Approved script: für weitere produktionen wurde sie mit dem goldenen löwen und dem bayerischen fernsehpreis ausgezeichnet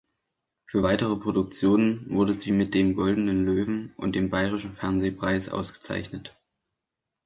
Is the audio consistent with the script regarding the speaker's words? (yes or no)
yes